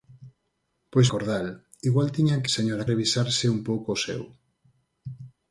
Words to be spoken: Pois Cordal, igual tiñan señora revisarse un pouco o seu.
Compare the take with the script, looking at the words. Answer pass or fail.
pass